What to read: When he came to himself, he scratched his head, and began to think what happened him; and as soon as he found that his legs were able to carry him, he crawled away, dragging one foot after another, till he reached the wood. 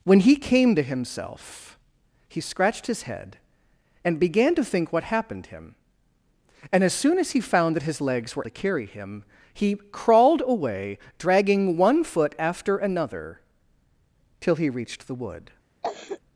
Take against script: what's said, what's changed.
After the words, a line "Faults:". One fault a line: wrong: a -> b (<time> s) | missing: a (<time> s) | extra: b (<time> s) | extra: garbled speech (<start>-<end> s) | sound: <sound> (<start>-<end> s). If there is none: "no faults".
When he came to himself, he scratched his head, and began to think what happened him; and as soon as he found that his legs were to carry him, he crawled away, dragging one foot after another, till he reached the wood.
Faults:
missing: able (8.4 s)
sound: cough (15.8-16.2 s)